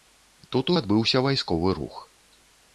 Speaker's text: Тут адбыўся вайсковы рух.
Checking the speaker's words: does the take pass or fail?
pass